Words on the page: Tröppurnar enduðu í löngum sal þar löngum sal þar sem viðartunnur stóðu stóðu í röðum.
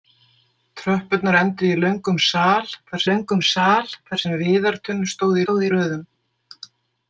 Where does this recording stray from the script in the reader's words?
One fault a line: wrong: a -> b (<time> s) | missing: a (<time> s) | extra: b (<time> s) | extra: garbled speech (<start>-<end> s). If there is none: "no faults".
no faults